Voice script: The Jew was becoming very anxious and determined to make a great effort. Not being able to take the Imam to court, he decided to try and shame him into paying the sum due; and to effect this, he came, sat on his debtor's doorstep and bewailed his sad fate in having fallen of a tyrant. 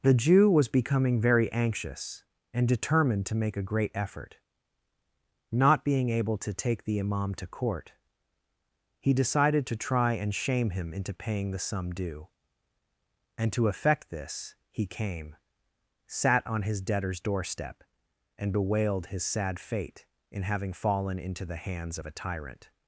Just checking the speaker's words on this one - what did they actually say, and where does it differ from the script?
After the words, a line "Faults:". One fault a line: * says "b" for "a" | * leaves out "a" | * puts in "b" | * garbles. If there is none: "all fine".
The Jew was becoming very anxious and determined to make a great effort. Not being able to take the Imam to court, he decided to try and shame him into paying the sum due; and to effect this, he came, sat on his debtor's doorstep and bewailed his sad fate in having fallen into the hands of a tyrant.
Faults:
* puts in "into the hands"